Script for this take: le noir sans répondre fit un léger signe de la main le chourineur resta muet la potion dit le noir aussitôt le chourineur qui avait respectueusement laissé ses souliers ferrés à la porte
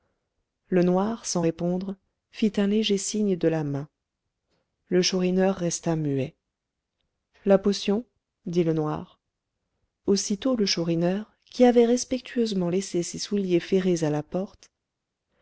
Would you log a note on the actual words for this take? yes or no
no